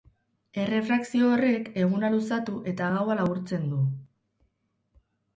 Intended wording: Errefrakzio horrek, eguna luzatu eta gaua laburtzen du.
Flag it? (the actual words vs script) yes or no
no